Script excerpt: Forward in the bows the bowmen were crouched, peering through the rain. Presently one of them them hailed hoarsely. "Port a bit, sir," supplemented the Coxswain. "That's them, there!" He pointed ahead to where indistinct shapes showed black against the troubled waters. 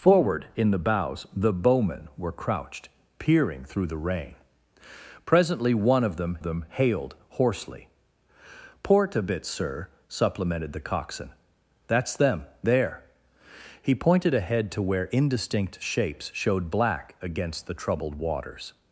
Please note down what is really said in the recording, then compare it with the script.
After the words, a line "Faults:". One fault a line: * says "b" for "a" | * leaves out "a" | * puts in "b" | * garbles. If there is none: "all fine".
Forward in the bows the bowmen were crouched, peering through the rain. Presently one of them them hailed hoarsely. "Port a bit, sir," supplemented the Coxswain. "That's them, there!" He pointed ahead to where indistinct shapes showed black against the troubled waters.
Faults:
all fine